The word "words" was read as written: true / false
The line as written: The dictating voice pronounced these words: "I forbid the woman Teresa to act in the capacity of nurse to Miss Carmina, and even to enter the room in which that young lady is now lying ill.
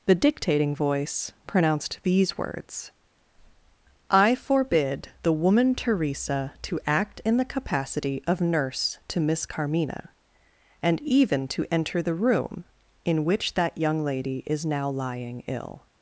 true